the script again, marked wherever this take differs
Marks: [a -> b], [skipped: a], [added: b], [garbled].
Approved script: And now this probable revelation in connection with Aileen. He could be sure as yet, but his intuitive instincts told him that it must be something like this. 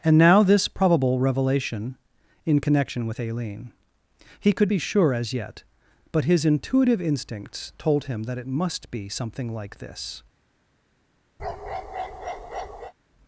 And now this probable revelation in connection with Aileen. He could be sure as yet, but his intuitive instincts told him that it must be something like this.